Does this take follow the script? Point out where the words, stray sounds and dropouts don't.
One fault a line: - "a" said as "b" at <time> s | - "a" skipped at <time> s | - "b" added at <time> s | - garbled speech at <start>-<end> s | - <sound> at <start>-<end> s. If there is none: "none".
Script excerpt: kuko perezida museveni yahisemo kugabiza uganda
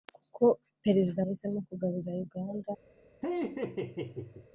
- "museveni" skipped at 1.2 s
- laugh at 3.2-4.5 s